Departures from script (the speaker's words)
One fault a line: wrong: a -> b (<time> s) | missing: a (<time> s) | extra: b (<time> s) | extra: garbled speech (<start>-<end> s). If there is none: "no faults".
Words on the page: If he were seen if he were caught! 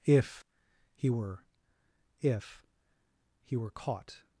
missing: seen (1.4 s)